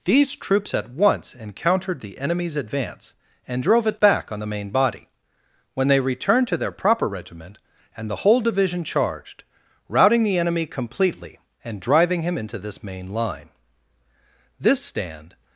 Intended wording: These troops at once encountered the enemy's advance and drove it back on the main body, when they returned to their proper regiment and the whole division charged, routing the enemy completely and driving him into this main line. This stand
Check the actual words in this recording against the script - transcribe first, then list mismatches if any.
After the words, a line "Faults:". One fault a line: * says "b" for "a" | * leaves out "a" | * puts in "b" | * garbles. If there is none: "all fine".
These troops at once encountered the enemy's advance and drove it back on the main body, when they returned to their proper regiment and the whole division charged, routing the enemy completely and driving him into this main line. This stand
Faults:
all fine